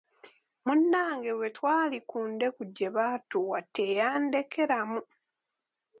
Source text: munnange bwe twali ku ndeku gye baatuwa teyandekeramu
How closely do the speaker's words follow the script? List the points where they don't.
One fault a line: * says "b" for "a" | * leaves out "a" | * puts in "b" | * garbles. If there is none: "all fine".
all fine